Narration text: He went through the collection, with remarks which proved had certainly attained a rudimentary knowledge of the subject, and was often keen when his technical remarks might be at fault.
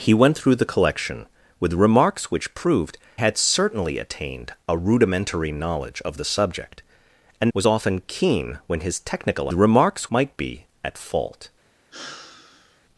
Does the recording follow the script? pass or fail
pass